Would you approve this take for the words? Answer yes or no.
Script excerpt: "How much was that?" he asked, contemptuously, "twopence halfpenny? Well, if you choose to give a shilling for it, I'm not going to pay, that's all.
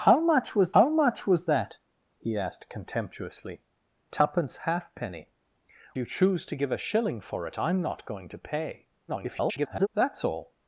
no